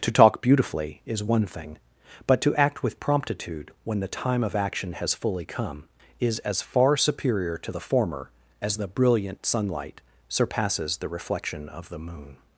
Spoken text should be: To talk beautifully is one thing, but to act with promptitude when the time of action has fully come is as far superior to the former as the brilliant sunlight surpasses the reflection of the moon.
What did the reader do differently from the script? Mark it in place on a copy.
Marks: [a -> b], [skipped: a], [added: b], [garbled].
To talk beautifully is one thing, but to act with promptitude when the time of action has fully come is as far superior to the former as the brilliant sunlight surpasses the reflection of the moon.